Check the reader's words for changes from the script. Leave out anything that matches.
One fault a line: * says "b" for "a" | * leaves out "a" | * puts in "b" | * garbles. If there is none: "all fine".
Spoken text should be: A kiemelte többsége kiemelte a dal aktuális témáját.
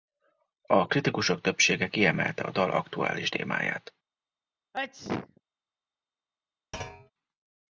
* says "kritikusok" for "kiemelte"